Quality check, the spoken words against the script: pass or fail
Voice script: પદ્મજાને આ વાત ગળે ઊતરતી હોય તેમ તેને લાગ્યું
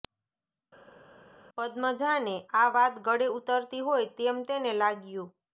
pass